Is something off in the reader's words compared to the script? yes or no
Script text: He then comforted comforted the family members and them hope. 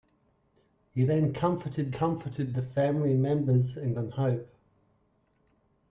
no